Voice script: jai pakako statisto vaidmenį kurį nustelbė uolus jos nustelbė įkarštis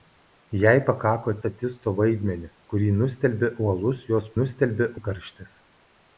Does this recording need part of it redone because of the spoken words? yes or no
no